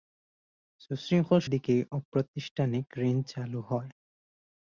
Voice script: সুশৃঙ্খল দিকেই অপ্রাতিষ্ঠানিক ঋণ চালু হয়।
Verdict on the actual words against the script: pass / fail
pass